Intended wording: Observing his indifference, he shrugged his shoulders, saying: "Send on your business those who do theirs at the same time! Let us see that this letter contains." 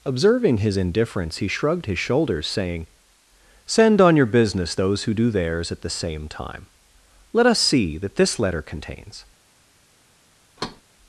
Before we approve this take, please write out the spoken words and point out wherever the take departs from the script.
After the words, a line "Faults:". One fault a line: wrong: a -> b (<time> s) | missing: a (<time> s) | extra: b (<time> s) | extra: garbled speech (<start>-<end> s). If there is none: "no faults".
Observing his indifference, he shrugged his shoulders, saying: "Send on your business those who do theirs at the same time! Let us see that this letter contains."
Faults:
no faults